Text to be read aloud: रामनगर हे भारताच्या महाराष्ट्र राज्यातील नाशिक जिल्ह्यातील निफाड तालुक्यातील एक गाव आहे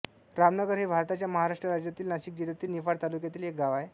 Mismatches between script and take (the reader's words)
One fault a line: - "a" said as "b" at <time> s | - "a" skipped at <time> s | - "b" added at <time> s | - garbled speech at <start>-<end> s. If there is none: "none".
none